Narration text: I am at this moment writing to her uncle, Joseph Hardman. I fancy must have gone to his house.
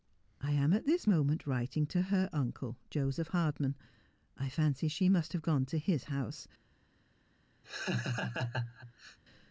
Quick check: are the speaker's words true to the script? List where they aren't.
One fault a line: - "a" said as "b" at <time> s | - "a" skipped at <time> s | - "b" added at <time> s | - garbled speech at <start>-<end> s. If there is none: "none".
- "she" added at 4.9 s